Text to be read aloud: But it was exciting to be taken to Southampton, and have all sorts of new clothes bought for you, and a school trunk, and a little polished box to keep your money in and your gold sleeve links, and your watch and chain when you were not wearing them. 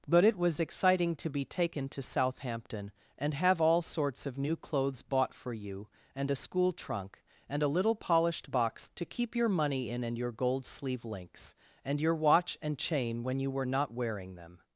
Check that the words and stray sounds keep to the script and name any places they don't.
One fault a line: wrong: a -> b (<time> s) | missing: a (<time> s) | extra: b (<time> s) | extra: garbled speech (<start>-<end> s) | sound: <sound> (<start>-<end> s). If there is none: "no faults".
no faults